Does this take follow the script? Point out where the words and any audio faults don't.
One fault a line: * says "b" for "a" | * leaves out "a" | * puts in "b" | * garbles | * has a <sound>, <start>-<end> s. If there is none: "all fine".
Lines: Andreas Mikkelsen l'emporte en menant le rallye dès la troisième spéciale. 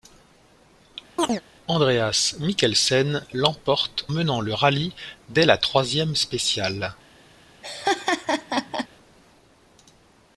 * has a chirp, 1.2-1.4 s
* leaves out "en"
* has a laugh, 7.6-8.9 s